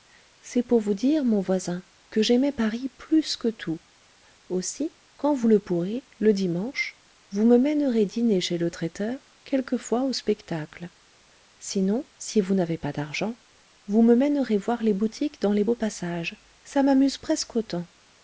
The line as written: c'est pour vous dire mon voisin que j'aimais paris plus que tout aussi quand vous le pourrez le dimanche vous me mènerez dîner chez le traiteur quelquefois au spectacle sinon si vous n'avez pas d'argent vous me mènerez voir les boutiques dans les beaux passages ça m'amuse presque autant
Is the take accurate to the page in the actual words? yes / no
yes